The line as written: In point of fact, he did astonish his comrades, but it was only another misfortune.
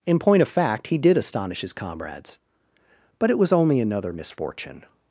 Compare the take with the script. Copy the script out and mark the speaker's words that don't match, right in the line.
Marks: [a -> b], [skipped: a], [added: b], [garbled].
In point of fact, he did astonish his comrades, but it was only another misfortune.